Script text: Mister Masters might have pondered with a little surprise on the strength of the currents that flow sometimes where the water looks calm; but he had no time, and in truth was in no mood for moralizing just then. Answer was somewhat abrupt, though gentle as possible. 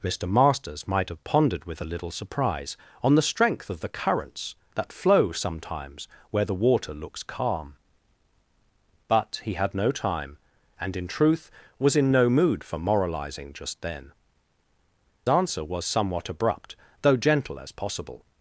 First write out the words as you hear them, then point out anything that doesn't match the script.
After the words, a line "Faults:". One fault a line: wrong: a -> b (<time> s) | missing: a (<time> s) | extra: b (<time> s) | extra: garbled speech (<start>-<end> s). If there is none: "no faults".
Mister Masters might have pondered with a little surprise on the strength of the currents that flow sometimes where the water looks calm; but he had no time, and in truth was in no mood for moralizing just then. Answer was somewhat abrupt, though gentle as possible.
Faults:
no faults